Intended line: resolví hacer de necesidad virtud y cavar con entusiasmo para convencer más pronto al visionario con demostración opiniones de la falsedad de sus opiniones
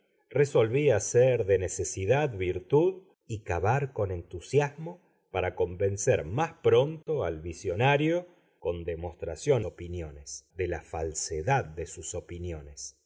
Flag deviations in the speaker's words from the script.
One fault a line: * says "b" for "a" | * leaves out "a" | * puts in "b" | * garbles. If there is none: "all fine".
all fine